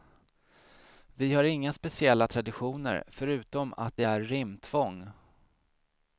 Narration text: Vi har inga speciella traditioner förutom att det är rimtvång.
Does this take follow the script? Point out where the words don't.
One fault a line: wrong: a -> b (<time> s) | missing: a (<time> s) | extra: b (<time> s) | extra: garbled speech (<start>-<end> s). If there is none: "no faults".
no faults